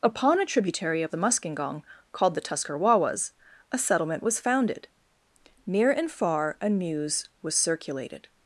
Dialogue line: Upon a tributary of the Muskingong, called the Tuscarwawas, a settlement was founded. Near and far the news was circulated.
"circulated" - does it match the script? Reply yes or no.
yes